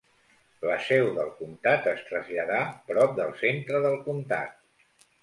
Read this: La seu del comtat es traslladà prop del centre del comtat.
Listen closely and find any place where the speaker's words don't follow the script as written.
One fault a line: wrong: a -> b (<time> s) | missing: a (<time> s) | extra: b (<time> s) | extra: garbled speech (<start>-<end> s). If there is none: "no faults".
no faults